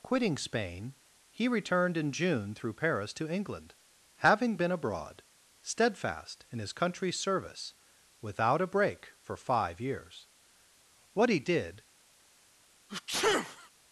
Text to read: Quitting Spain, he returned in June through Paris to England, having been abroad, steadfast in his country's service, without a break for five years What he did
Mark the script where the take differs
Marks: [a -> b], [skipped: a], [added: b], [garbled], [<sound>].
Quitting Spain, he returned in June through Paris to England, having been abroad, steadfast in his country's service, without a break for five years What he did [sneeze]